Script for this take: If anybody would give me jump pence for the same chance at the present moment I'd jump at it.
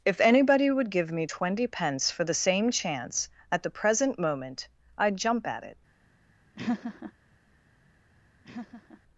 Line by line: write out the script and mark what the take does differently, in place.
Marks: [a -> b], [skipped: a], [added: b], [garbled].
If anybody would give me [jump -> twenty] pence for the same chance at the present moment I'd jump at it.